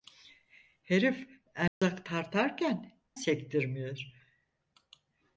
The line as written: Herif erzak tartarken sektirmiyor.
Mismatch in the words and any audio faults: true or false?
true